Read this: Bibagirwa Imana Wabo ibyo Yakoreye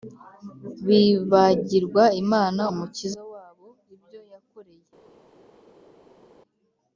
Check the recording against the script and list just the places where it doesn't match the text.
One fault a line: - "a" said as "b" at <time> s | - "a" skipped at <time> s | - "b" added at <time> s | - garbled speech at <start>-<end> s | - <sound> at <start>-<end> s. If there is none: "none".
- "Umukiza" added at 2.7 s